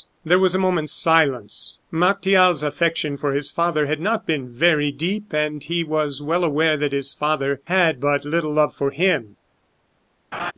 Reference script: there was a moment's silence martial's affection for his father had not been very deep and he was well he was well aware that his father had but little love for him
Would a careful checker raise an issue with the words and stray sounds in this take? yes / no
yes